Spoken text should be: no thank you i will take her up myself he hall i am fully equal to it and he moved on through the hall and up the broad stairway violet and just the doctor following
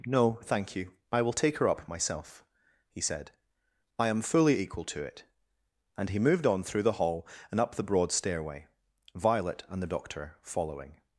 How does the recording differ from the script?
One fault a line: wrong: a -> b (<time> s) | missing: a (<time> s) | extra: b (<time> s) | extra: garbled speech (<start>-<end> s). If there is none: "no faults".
wrong: hall -> said (3.0 s)
missing: just (9.8 s)